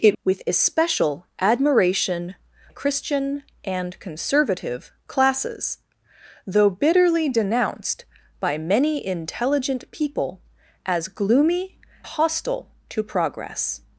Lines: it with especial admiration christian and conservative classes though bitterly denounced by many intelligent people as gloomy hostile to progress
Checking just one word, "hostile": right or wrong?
right